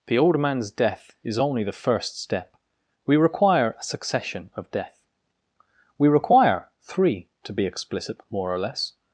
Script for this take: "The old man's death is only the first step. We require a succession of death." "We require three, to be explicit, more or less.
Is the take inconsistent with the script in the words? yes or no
no